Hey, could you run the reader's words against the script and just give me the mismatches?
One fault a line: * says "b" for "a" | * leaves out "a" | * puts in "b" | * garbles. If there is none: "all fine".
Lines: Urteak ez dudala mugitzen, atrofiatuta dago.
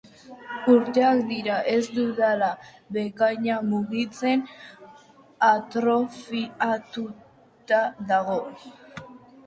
* puts in "dira"
* puts in "bekaina"